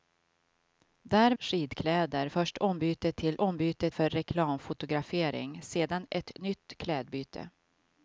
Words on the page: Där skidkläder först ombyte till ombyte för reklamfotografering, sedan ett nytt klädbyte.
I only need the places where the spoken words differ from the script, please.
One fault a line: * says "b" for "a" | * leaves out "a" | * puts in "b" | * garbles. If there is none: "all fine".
all fine